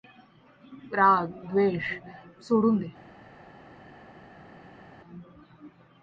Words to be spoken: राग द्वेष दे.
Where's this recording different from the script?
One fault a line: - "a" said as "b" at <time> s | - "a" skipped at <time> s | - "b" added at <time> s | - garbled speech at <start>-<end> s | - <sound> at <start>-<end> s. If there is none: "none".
- "सोडून" added at 2.4 s